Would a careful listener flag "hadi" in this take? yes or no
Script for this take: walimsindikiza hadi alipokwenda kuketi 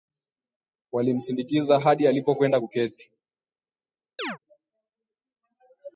no